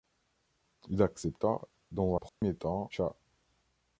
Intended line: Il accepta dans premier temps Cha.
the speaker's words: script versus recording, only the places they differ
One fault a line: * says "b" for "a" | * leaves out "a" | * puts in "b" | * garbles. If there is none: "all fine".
all fine